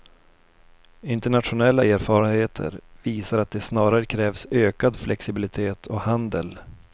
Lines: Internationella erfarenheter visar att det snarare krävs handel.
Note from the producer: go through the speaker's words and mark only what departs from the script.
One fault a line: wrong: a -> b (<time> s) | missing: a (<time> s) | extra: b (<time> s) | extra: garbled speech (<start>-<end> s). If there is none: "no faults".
extra: ökad flexibilitet och (4.5 s)